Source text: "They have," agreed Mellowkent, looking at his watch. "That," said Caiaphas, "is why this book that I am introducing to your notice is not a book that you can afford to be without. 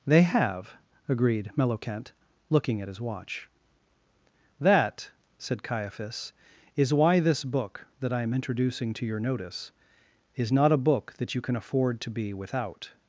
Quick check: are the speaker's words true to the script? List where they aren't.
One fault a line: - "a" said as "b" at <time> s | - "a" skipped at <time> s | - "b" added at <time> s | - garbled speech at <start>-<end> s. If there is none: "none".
none